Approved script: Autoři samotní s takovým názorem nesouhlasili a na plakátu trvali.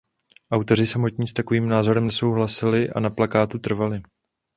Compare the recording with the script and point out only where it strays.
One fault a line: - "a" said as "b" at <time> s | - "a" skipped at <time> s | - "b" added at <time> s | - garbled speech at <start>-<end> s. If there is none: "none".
none